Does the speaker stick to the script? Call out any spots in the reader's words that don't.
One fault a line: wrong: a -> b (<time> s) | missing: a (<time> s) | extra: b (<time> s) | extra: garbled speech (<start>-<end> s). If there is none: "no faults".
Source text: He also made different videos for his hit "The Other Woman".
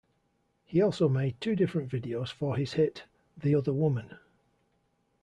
extra: two (1.4 s)